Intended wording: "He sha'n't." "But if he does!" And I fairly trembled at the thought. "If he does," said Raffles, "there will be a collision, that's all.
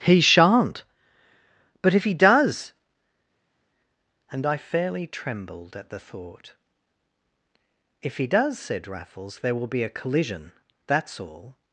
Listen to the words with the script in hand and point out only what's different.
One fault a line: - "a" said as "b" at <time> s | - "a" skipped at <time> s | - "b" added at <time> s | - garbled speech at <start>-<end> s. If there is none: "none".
none